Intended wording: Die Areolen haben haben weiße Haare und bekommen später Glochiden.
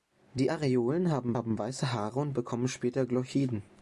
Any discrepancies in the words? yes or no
no